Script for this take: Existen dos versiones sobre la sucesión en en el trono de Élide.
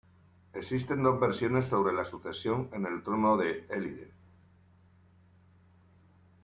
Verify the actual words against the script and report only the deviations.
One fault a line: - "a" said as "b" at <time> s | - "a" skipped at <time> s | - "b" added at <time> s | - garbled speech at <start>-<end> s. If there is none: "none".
- "en" skipped at 2.9 s